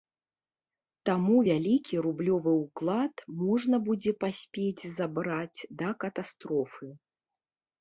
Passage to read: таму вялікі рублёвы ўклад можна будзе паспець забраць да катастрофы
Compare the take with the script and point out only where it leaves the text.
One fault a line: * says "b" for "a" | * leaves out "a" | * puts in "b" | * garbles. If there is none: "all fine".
all fine